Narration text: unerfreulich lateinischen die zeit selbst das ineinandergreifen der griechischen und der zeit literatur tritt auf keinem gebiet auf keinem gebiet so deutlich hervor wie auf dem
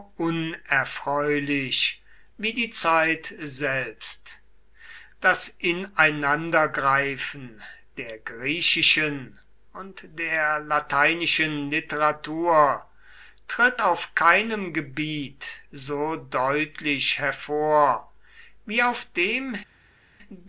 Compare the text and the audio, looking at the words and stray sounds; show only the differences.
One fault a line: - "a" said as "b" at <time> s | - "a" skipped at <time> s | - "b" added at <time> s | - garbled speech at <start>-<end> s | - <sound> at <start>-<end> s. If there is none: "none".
- "lateinischen" said as "wie" at 2.4 s
- "zeit" said as "lateinischen" at 10.6 s
- "auf keinem gebiet" skipped at 15.5 s